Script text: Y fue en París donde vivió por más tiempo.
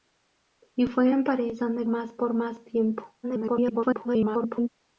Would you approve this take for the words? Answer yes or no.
no